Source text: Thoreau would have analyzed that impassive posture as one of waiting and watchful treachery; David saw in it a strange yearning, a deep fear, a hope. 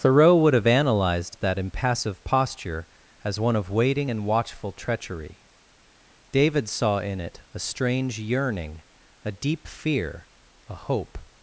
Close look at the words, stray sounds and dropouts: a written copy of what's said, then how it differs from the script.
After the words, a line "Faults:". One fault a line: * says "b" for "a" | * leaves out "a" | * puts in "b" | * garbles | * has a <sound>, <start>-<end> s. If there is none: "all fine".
Thoreau would have analyzed that impassive posture as one of waiting and watchful treachery; David saw in it a strange yearning, a deep fear, a hope.
Faults:
all fine